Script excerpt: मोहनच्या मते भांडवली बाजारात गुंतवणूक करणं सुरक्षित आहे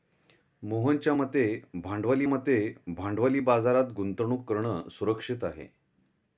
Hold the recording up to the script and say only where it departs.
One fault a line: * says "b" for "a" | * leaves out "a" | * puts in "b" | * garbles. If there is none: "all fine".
* puts in "मते भांडवली"